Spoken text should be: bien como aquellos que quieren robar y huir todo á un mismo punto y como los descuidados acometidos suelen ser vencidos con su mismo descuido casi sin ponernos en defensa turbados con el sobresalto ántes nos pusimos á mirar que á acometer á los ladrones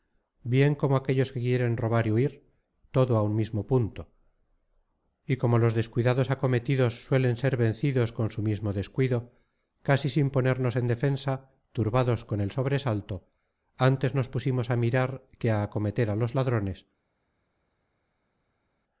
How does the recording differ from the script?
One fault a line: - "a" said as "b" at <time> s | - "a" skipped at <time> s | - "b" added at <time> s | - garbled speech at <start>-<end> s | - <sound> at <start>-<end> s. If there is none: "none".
none